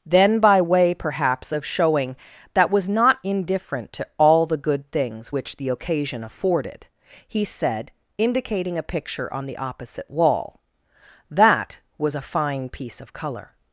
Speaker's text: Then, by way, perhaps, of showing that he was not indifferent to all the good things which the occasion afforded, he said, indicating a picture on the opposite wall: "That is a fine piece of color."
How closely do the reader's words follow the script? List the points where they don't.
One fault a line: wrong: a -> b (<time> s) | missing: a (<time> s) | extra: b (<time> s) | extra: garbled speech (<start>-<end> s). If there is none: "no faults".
missing: he (2.7 s)
wrong: is -> was (12.0 s)